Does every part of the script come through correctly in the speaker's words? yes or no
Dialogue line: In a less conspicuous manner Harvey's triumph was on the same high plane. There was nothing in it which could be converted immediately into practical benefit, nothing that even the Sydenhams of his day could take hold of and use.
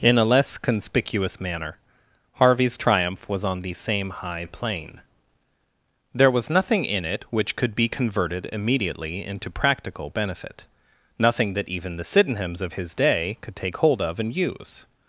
yes